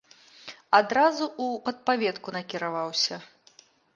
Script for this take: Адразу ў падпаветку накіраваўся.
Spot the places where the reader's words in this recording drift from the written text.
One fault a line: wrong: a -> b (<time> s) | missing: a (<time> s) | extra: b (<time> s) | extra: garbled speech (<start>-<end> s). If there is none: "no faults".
no faults